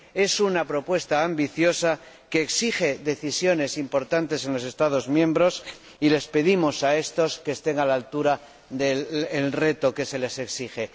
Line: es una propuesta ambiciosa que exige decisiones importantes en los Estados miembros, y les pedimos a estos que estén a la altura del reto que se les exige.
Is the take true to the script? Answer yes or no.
yes